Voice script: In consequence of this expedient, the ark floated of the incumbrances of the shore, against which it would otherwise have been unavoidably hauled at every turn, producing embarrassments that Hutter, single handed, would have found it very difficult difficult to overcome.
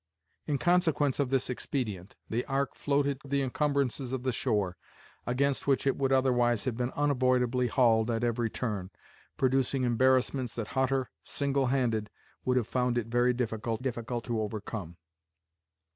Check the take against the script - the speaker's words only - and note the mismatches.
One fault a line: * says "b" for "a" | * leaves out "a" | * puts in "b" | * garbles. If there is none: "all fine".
all fine